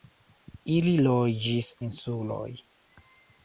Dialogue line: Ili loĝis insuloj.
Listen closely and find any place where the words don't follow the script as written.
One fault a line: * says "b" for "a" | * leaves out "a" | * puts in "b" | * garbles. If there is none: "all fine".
all fine